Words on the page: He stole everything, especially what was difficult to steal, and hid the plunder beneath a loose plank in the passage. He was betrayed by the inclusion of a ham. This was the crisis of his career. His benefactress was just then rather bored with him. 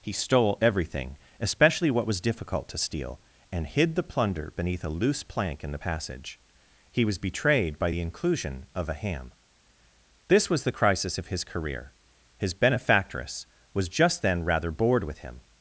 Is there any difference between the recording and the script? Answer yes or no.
no